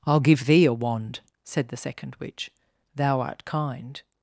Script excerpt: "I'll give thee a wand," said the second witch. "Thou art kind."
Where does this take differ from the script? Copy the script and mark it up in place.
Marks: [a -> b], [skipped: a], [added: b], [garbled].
"I'll give thee a wand," said the second witch. "Thou art kind."